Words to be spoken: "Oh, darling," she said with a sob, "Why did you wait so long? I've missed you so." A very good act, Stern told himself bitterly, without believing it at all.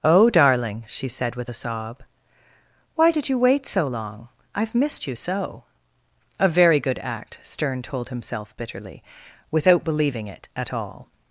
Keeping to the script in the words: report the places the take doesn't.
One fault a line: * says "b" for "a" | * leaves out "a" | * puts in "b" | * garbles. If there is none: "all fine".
all fine